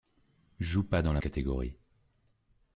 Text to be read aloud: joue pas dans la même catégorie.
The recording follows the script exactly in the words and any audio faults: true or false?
false